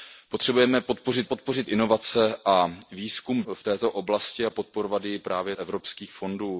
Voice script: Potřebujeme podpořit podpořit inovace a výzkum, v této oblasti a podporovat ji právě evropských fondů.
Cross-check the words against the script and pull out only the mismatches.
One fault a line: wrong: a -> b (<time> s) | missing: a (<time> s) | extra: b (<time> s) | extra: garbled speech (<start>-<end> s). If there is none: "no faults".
no faults